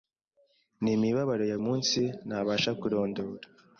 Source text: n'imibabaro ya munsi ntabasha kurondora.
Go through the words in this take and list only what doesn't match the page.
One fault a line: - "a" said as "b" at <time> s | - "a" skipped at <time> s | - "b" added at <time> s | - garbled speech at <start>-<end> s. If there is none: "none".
none